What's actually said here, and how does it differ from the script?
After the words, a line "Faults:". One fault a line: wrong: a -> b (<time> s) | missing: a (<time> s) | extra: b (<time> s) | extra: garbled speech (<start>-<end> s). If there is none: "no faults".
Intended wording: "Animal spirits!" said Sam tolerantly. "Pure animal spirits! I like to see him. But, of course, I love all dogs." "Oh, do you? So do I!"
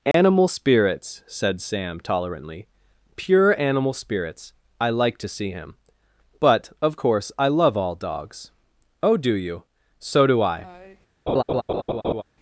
"Animal spirits!" said Sam tolerantly. "Pure animal spirits! I like to see him. But, of course, I love all dogs." "Oh, do you? So do I!"
Faults:
no faults